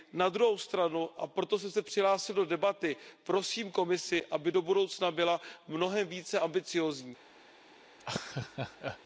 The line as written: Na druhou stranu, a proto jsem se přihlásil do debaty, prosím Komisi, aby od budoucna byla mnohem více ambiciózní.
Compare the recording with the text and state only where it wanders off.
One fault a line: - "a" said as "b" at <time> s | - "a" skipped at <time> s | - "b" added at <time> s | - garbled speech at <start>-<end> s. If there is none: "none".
- "od" said as "do" at 4.5 s